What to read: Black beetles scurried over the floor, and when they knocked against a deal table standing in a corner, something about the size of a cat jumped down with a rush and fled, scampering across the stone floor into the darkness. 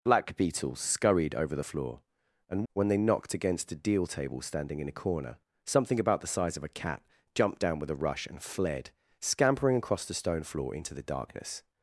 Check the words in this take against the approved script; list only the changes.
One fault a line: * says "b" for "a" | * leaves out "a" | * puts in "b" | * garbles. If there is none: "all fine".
all fine